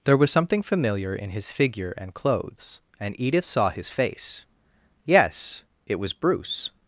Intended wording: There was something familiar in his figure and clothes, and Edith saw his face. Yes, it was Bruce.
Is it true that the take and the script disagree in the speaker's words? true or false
false